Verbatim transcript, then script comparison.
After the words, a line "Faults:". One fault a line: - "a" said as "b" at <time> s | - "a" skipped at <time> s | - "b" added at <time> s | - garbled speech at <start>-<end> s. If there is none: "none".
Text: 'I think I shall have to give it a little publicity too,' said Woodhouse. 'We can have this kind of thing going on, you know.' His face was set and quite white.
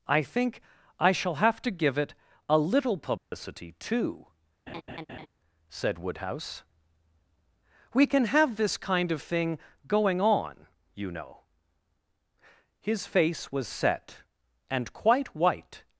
'I think I shall have to give it a little publicity too,' said Woodhouse. 'We can have this kind of thing going on, you know.' His face was set and quite white.
Faults:
none